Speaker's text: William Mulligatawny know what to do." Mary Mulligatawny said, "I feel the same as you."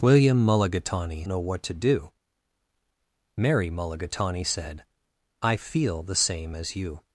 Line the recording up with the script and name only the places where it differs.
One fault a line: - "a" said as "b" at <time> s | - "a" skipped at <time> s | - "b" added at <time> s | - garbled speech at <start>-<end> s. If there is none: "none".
none